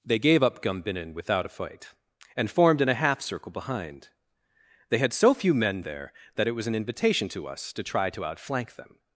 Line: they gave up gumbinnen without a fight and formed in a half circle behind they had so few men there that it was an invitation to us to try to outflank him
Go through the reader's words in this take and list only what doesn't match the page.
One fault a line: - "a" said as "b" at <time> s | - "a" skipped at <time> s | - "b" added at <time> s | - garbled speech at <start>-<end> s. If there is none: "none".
- "him" said as "them" at 8.8 s